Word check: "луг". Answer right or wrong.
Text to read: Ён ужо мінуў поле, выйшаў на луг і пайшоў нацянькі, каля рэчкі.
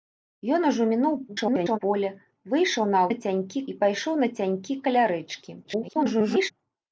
wrong